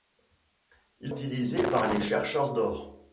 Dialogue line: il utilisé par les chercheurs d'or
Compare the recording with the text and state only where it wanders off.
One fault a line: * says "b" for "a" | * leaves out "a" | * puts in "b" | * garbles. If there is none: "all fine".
all fine